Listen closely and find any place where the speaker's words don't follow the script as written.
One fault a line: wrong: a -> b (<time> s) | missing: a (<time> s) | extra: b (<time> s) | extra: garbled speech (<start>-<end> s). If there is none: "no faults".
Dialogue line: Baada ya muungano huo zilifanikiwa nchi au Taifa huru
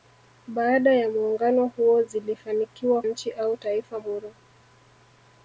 no faults